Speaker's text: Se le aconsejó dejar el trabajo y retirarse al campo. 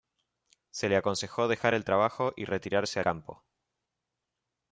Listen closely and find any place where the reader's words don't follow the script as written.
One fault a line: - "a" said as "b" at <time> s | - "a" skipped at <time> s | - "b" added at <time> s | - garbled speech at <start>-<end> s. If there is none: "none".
- "al" skipped at 3.0 s